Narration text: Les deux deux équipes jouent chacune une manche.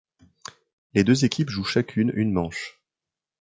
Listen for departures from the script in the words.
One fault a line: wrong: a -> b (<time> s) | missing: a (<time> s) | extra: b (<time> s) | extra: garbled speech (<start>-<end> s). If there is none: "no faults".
missing: deux (1.2 s)